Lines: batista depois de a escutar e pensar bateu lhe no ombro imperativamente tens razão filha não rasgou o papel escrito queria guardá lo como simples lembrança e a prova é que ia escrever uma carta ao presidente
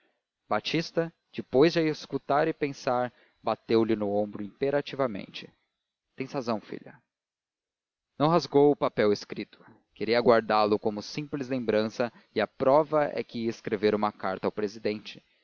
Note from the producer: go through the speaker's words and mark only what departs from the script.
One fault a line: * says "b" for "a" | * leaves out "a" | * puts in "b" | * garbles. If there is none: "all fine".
all fine